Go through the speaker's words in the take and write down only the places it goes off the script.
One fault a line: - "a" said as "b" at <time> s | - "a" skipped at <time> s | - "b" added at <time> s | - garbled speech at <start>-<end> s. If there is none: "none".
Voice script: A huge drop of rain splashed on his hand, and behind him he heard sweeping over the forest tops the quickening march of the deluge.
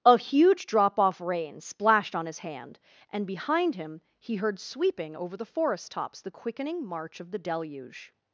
- "of" said as "off" at 1.0 s